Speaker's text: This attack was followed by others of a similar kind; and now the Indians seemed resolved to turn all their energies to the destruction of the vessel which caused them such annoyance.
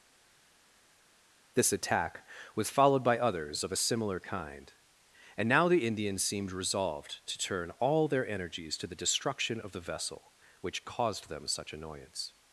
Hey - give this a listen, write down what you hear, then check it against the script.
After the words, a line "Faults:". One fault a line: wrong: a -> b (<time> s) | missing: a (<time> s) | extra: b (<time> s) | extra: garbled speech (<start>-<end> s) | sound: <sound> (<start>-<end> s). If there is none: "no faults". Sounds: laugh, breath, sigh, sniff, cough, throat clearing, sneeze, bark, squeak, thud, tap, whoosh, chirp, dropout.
This attack was followed by others of a similar kind; and now the Indians seemed resolved to turn all their energies to the destruction of the vessel which caused them such annoyance.
Faults:
no faults